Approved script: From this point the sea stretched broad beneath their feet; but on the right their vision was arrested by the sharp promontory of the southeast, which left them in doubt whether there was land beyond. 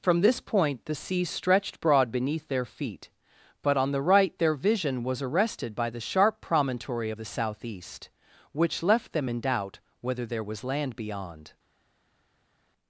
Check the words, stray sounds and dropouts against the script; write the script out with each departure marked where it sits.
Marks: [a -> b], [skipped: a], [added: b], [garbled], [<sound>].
From this point the sea stretched broad beneath their feet; but on the right their vision was arrested by the sharp promontory of the southeast, which left them in doubt whether there was land beyond.